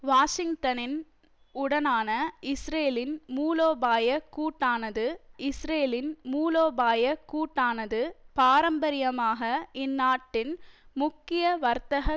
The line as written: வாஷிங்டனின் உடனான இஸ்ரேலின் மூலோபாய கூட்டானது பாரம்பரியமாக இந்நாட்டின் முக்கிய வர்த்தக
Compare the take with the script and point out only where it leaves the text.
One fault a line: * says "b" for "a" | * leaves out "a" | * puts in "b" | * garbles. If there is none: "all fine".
* puts in "இஸ்ரேலின் மூலோபாய கூட்டானது"